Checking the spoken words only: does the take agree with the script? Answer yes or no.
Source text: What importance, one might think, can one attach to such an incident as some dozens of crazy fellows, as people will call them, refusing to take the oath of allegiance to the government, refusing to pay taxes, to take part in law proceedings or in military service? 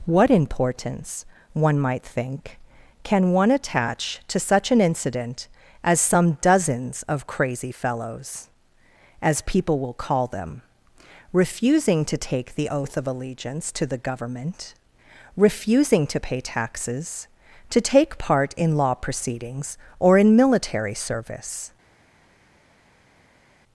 yes